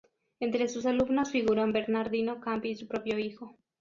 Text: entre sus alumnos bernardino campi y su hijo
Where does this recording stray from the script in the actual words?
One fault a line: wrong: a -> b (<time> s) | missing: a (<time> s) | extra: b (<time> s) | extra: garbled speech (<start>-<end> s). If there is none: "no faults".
extra: figuran (1.3 s)
extra: propio (2.9 s)